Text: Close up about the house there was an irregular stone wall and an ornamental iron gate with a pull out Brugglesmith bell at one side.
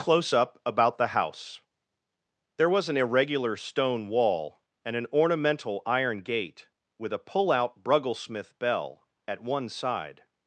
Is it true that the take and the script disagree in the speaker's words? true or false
false